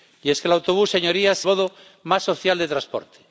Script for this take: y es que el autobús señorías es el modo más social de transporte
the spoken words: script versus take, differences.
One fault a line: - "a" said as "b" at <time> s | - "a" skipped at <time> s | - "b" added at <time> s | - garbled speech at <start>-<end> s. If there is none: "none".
- "es el" skipped at 1.4 s